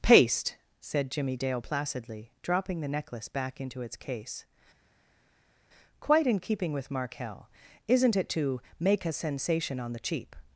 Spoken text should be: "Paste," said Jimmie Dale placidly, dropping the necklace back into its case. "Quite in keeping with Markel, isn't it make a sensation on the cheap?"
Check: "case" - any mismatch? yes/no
no